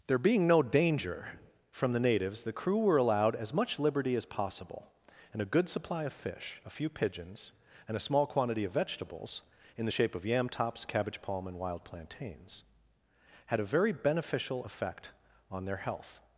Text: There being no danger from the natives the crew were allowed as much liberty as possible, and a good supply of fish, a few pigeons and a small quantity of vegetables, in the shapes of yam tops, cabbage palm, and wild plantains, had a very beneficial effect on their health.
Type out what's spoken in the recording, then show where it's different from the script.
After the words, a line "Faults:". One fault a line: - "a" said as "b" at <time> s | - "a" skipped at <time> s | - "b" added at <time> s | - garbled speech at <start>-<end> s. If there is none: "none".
There being no danger from the natives the crew were allowed as much liberty as possible, and a good supply of fish, a few pigeons and a small quantity of vegetables, in the shape of yam tops, cabbage palm, and wild plantains, had a very beneficial effect on their health.
Faults:
- "shapes" said as "shape" at 9.9 s